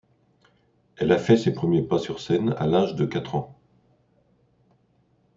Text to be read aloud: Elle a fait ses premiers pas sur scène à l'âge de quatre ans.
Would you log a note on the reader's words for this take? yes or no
no